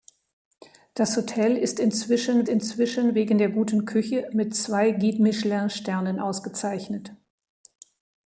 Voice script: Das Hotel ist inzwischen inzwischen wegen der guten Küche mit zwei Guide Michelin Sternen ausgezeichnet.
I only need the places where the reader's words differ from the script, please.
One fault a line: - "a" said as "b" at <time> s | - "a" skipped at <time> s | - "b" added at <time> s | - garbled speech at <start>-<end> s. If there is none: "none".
none